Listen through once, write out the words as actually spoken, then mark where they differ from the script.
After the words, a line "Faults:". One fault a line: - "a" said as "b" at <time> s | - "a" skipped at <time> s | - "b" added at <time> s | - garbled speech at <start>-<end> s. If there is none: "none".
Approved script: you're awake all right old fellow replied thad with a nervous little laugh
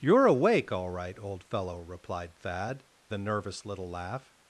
you're awake all right old fellow replied thad a nervous little laugh
Faults:
- "with" skipped at 2.9 s